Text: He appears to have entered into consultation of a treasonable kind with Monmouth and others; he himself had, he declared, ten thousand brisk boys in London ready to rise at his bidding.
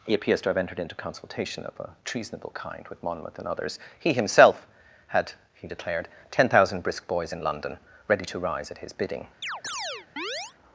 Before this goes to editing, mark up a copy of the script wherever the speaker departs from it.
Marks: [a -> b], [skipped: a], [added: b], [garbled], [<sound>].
He appears to have entered into consultation of a treasonable kind with Monmouth and others; he himself had, he declared, ten thousand brisk boys in London ready to rise at his bidding. [chirp]